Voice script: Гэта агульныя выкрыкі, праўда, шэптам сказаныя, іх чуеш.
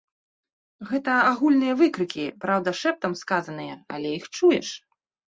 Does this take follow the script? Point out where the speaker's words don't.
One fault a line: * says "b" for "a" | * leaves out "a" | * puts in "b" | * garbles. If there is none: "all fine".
* puts in "але"